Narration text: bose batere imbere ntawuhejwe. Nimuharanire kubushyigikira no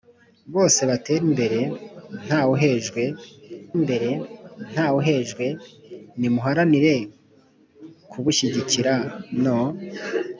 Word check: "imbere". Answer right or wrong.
right